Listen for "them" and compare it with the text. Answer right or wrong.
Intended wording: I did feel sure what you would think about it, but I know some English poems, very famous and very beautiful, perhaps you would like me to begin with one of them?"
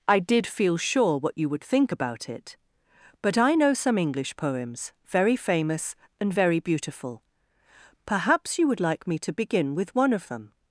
right